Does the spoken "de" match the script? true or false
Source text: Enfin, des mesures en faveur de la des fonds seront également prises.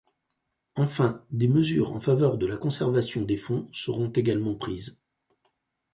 true